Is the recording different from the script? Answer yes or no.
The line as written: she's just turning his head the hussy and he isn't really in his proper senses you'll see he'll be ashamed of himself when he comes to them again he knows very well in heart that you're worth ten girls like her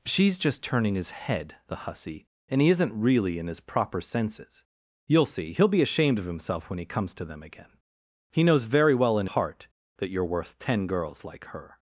no